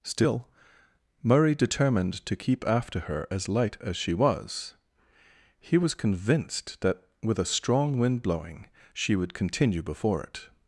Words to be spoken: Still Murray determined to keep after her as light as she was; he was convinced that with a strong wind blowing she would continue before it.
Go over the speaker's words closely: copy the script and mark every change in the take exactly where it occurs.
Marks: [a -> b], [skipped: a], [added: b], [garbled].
Still Murray determined to keep after her as light as she was; he was convinced that with a strong wind blowing she would continue before it.